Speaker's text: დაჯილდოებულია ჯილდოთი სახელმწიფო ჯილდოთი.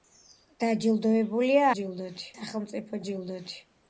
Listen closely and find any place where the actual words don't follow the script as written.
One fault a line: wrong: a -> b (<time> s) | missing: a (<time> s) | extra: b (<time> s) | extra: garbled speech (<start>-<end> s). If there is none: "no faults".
no faults